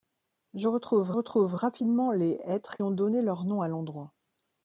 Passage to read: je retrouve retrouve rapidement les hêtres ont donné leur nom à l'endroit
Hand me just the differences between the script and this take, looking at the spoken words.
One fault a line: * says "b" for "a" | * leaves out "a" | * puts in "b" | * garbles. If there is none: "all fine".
all fine